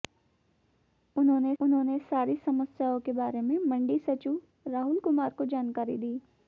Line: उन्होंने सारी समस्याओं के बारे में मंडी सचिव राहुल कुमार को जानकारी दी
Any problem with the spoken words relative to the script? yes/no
yes